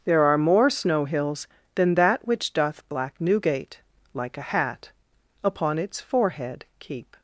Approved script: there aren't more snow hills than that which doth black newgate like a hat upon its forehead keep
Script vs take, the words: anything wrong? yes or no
yes